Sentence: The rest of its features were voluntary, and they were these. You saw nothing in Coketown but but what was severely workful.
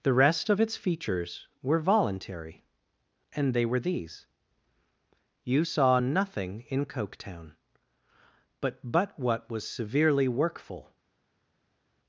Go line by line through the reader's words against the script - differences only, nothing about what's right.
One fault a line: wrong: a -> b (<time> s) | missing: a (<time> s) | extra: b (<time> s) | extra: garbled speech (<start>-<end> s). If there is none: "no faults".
no faults